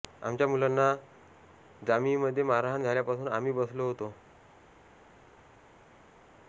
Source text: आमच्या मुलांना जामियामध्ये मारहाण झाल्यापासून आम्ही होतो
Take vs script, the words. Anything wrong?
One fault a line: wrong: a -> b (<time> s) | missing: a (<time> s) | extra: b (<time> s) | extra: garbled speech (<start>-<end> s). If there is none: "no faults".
extra: बसलो (3.5 s)